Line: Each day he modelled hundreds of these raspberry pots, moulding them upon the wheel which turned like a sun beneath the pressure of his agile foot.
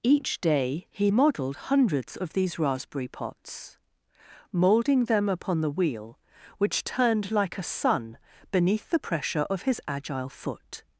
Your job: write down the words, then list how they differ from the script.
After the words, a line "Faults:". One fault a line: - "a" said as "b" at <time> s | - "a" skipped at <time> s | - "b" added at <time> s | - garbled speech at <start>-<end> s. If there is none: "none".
Each day he modelled hundreds of these raspberry pots, moulding them upon the wheel which turned like a sun beneath the pressure of his agile foot.
Faults:
none